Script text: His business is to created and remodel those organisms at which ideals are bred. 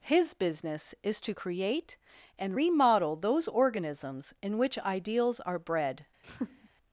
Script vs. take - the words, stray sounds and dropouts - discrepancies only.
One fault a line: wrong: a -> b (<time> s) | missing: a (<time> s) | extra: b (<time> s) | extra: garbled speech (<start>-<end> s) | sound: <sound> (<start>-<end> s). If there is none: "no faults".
wrong: created -> create (1.3 s)
wrong: at -> in (4.4 s)
sound: laugh (6.2-6.7 s)